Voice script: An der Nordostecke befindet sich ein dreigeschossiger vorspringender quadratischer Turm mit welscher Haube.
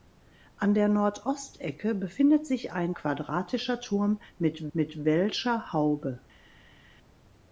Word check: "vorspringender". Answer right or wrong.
wrong